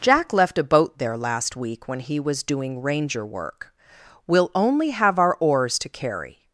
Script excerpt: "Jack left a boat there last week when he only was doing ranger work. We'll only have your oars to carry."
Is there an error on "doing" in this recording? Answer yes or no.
no